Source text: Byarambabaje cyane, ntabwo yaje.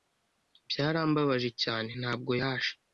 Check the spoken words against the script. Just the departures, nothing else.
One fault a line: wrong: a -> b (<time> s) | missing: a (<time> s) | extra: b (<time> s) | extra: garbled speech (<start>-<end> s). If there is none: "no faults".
no faults